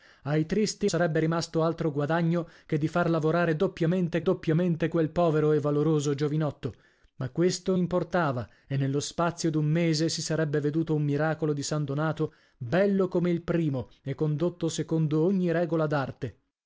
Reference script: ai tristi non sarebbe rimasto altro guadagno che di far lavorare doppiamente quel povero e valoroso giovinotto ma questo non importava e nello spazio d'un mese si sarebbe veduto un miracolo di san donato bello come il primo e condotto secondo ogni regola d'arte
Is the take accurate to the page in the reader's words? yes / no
no